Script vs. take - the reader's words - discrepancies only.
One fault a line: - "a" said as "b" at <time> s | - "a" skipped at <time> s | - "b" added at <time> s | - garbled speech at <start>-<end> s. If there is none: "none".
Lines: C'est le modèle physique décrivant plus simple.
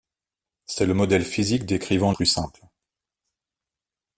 none